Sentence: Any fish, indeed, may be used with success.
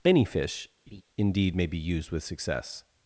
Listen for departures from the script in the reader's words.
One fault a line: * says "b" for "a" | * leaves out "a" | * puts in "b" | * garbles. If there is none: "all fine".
all fine